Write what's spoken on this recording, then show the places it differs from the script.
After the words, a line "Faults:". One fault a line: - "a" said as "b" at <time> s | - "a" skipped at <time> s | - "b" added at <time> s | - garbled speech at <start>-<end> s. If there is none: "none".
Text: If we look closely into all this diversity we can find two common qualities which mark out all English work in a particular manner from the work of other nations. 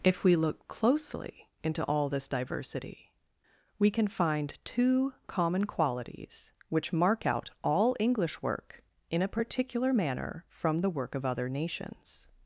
If we look closely into all this diversity we can find two common qualities which mark out all English work in a particular manner from the work of other nations.
Faults:
none